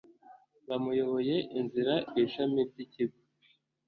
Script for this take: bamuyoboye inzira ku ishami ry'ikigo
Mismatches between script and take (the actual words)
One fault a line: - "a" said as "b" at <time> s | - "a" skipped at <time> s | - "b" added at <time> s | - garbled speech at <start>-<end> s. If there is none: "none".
none